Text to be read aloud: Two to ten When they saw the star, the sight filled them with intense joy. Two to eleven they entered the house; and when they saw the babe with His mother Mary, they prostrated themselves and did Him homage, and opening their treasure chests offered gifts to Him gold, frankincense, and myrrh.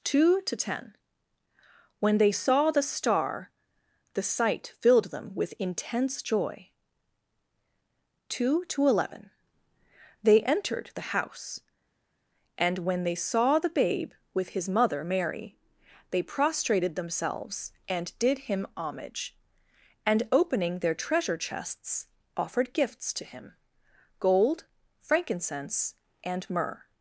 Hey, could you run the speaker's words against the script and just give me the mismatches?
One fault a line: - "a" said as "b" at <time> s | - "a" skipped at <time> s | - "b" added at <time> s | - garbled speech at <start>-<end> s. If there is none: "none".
none